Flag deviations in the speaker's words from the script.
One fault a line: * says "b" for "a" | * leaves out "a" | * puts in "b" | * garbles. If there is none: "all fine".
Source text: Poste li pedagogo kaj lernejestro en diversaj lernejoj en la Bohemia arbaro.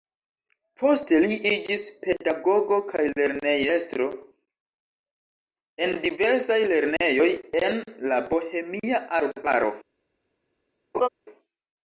* puts in "iĝis"